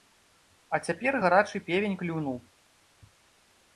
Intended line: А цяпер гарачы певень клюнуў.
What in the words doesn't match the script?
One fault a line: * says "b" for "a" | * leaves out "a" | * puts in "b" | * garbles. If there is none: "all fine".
all fine